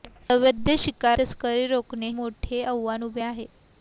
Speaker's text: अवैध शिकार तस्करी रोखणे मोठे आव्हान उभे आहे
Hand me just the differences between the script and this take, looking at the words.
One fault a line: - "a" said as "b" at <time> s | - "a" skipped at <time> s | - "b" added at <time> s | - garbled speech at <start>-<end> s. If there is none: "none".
none